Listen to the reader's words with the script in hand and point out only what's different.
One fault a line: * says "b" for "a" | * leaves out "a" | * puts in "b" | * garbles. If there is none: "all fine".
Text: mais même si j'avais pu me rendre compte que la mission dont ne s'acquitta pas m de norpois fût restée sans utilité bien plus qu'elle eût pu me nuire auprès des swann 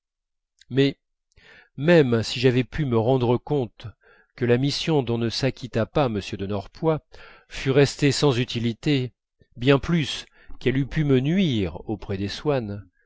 all fine